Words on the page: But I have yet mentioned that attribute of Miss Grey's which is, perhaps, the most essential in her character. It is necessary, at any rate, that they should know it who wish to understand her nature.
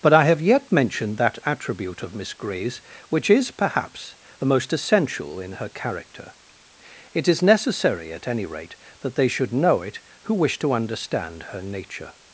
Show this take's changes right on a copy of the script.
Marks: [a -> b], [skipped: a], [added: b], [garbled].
But I have yet mentioned that attribute of Miss Grey's which is, perhaps, the most essential in her character. It is necessary, at any rate, that they should know it who wish to understand her nature.